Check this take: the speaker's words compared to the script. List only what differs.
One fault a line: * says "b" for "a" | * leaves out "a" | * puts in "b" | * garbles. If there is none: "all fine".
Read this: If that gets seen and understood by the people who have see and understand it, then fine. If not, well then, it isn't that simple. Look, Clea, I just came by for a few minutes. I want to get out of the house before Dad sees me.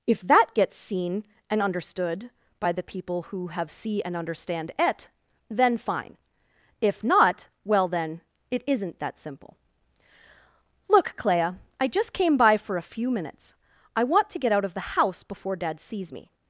all fine